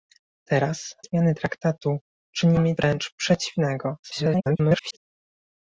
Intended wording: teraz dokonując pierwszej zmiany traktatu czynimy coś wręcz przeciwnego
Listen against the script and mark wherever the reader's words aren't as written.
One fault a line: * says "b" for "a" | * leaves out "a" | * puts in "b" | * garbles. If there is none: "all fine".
* leaves out "dokonując pierwszej"
* leaves out "coś"
* garbles